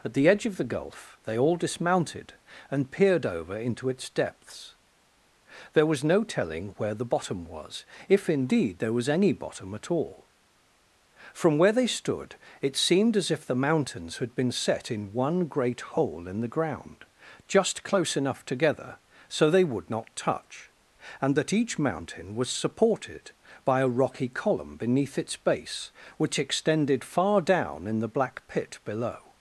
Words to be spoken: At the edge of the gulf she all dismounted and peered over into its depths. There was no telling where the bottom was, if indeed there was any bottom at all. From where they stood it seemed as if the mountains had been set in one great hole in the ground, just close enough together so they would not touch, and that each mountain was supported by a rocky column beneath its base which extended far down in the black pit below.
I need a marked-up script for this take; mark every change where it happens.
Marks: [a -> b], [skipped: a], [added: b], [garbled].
At the edge of the gulf [she -> they] all dismounted and peered over into its depths. There was no telling where the bottom was, if indeed there was any bottom at all. From where they stood it seemed as if the mountains had been set in one great hole in the ground, just close enough together so they would not touch, and that each mountain was supported by a rocky column beneath its base which extended far down in the black pit below.